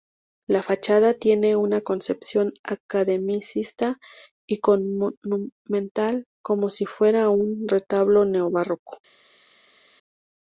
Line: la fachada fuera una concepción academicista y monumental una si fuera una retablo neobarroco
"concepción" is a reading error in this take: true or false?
false